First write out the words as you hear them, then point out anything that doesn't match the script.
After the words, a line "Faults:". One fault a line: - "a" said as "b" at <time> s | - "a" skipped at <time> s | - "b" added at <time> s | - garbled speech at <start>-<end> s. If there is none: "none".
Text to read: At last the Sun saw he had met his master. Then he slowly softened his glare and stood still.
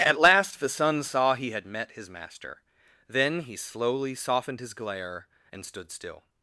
At last the Sun saw he had met his master. Then he slowly softened his glare and stood still.
Faults:
none